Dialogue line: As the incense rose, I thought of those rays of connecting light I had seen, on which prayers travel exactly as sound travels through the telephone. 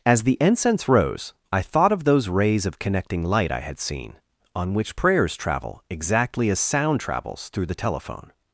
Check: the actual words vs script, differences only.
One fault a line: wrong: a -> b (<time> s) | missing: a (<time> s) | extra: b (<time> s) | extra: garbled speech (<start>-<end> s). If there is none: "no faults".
no faults